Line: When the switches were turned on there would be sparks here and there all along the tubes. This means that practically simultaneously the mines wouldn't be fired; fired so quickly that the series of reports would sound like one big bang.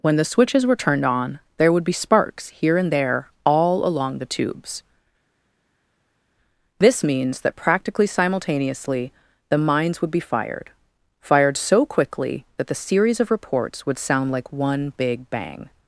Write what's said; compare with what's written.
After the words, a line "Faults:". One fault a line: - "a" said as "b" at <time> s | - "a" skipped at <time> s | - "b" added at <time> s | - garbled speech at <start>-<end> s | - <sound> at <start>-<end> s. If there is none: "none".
When the switches were turned on there would be sparks here and there all along the tubes. This means that practically simultaneously the mines would be fired; fired so quickly that the series of reports would sound like one big bang.
Faults:
- "wouldn't" said as "would" at 10.0 s